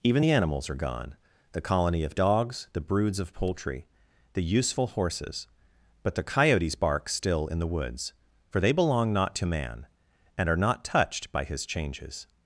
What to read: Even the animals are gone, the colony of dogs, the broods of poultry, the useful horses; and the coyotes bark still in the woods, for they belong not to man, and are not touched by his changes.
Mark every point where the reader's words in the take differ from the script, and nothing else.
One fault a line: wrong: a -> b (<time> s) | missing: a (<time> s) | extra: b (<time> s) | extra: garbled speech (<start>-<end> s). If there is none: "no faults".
wrong: and -> but (6.0 s)